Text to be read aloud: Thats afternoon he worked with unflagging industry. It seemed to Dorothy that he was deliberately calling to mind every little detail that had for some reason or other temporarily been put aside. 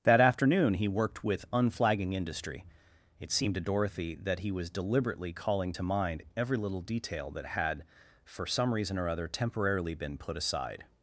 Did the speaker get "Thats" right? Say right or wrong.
wrong